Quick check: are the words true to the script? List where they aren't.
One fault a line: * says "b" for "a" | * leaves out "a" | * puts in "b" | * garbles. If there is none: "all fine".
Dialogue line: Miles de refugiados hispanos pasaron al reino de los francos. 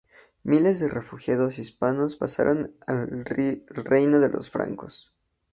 all fine